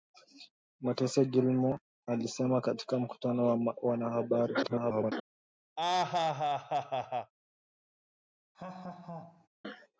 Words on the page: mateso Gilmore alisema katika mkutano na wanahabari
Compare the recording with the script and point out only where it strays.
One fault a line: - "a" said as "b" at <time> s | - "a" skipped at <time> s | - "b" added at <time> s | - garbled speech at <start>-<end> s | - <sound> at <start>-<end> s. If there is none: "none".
- garbled speech at 4.6-5.1 s
- laugh at 5.8-7.3 s
- laugh at 8.5-9.5 s